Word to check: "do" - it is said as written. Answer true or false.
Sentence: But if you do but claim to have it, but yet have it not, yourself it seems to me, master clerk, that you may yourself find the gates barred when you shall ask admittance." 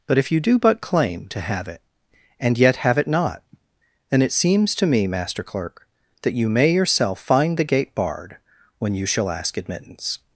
true